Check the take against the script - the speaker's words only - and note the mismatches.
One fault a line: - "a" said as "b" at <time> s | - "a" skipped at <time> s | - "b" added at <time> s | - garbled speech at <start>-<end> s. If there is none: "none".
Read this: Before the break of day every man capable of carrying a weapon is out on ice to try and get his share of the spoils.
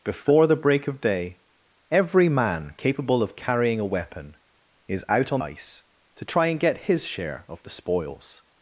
none